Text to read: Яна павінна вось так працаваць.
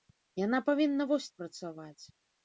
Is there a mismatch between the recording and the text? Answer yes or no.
yes